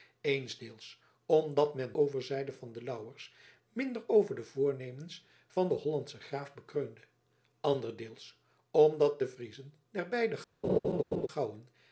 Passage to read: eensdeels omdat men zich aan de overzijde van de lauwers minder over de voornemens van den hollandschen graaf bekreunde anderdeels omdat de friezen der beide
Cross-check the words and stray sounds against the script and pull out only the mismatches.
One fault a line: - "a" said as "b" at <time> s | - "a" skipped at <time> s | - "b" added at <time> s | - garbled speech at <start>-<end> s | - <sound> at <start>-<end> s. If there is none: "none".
- "zich aan de" skipped at 2.0 s
- laugh at 10.6-11.3 s